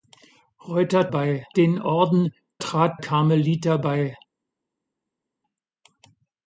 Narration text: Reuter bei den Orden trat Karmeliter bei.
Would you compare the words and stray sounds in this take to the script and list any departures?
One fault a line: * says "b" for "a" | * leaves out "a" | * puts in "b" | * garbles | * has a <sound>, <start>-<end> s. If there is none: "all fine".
all fine